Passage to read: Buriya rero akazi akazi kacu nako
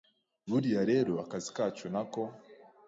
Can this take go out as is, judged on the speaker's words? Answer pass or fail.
fail